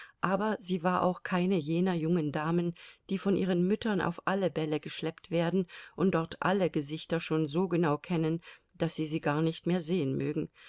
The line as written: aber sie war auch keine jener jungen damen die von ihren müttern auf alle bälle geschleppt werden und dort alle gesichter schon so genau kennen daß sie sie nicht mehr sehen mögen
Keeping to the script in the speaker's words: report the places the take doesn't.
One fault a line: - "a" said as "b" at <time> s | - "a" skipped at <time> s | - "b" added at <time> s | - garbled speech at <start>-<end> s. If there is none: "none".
- "gar" added at 9.2 s